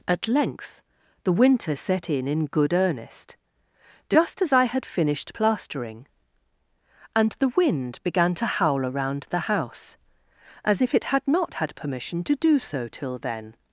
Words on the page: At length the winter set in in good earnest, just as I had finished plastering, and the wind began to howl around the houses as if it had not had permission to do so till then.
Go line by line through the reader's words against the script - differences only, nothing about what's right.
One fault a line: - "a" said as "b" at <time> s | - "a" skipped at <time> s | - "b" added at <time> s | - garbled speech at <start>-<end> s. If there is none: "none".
- "houses" said as "house" at 9.4 s